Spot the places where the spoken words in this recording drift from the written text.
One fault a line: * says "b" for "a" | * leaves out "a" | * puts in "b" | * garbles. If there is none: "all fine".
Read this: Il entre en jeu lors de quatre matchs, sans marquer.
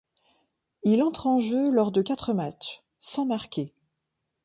all fine